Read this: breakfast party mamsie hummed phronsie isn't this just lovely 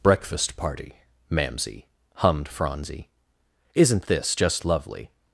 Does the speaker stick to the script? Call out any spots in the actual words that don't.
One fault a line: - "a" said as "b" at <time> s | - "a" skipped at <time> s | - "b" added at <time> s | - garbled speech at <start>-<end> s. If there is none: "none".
none